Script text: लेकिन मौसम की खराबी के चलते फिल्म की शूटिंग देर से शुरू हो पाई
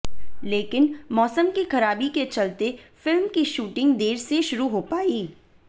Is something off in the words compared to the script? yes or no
no